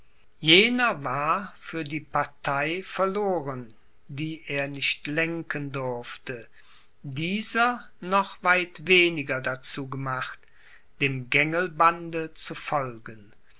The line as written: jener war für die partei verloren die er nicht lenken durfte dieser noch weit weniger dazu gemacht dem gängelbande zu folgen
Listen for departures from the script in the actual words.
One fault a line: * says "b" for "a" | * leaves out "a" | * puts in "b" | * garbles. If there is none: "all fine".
all fine